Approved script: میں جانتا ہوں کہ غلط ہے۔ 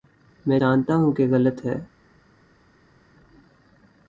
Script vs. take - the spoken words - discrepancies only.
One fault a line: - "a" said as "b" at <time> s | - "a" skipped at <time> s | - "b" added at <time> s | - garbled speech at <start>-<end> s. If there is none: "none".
none